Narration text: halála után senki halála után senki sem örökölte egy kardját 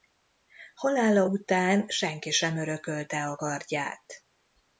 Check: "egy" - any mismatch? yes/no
yes